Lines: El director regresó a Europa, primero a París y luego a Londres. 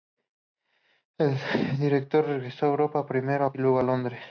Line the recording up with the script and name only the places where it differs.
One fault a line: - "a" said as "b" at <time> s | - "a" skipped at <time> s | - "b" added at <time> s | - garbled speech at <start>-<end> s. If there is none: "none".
- "París" skipped at 3.5 s